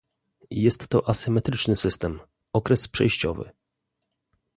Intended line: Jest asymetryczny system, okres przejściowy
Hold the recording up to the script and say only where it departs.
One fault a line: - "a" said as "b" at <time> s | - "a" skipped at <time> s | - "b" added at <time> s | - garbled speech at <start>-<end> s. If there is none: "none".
- "to" added at 0.9 s